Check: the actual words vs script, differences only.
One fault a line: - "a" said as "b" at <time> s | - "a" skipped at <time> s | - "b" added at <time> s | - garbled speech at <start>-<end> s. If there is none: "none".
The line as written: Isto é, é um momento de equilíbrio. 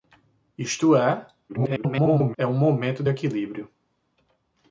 - garbled speech at 1.5-2.4 s